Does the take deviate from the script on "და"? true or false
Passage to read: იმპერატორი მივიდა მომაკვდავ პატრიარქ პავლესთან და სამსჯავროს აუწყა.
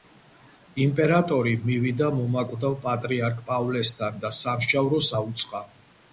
false